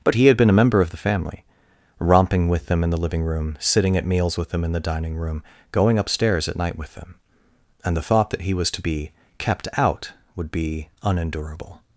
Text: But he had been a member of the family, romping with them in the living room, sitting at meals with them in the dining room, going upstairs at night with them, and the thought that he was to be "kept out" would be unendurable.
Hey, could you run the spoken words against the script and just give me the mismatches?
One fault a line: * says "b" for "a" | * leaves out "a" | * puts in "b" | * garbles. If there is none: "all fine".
all fine